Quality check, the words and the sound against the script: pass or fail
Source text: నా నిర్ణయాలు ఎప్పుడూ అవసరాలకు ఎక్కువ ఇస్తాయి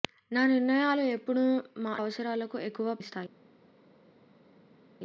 pass